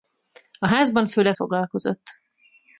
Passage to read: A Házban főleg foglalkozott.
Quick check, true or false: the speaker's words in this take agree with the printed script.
true